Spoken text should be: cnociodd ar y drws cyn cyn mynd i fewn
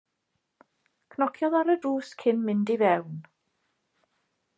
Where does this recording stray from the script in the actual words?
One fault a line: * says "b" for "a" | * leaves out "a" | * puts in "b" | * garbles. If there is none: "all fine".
* leaves out "cyn"